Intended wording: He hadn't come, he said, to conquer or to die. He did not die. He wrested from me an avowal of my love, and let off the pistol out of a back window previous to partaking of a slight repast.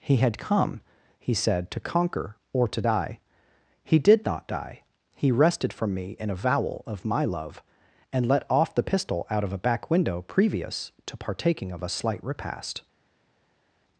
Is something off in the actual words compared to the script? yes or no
yes